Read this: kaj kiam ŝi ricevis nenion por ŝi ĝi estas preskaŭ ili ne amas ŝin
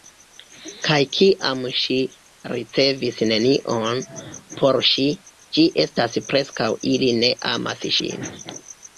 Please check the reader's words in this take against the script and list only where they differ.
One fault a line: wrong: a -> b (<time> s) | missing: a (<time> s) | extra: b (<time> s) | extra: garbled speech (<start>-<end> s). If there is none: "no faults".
no faults